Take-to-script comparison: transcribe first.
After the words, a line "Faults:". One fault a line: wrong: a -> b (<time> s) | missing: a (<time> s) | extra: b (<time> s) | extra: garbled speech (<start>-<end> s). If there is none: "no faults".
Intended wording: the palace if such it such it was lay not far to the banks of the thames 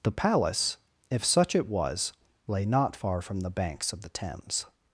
the palace if such it was lay not far from the banks of the thames
Faults:
missing: such it (1.7 s)
wrong: to -> from (3.2 s)